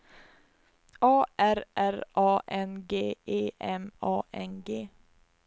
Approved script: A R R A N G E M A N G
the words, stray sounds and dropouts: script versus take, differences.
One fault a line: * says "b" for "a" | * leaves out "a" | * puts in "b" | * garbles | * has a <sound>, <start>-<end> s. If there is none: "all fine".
all fine